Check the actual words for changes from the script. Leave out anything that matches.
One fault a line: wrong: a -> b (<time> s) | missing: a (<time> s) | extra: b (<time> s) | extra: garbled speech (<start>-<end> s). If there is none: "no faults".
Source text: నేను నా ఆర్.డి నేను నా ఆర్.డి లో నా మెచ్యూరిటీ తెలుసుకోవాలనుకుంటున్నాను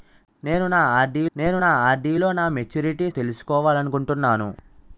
no faults